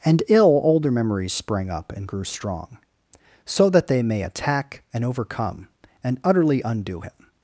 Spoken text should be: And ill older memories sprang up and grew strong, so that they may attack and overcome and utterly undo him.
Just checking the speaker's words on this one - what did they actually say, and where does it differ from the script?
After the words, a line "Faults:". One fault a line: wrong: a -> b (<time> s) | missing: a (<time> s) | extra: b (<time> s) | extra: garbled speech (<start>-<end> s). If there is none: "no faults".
And ill older memories sprang up and grew strong, so that they may attack and overcome and utterly undo him.
Faults:
no faults